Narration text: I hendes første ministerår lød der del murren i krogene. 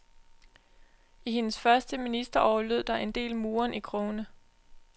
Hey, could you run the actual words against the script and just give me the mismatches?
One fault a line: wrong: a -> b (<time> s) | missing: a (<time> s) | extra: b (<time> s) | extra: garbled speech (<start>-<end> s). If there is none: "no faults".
extra: en (3.0 s)